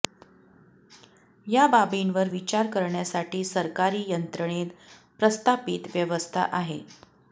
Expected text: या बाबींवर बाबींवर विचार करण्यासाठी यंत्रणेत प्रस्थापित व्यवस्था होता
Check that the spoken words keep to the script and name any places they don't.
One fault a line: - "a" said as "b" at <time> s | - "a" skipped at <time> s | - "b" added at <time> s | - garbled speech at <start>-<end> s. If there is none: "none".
- "बाबींवर" skipped at 2.3 s
- "सरकारी" added at 3.4 s
- "होता" said as "आहे" at 6.5 s